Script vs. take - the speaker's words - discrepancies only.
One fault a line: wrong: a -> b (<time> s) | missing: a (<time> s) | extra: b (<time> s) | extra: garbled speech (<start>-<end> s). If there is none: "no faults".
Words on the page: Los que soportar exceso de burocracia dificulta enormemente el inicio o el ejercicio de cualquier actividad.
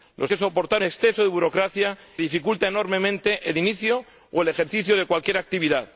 no faults